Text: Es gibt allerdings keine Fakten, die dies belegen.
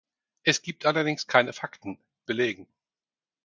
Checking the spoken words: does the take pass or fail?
fail